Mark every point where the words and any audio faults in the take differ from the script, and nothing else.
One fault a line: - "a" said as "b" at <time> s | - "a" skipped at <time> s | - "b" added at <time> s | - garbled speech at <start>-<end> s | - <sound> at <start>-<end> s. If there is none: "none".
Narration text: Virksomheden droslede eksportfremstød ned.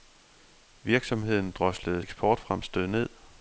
none